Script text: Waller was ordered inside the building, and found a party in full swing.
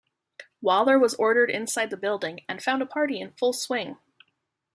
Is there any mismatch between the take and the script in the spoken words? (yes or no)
no